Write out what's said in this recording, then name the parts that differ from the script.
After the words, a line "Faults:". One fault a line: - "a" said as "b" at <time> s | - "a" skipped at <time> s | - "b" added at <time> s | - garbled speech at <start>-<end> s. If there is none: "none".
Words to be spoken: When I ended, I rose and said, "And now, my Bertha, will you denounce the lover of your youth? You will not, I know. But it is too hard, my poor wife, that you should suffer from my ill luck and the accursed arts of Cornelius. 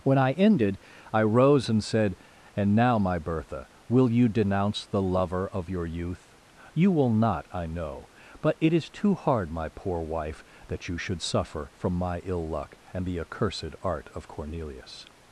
When I ended, I rose and said, "And now, my Bertha, will you denounce the lover of your youth? You will not, I know. But it is too hard, my poor wife, that you should suffer from my ill luck and the accursed art of Cornelius.
Faults:
- "arts" said as "art" at 13.8 s